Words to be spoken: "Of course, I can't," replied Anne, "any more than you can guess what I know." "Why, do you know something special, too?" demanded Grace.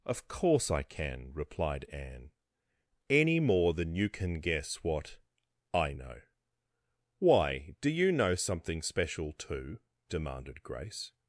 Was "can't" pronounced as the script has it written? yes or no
no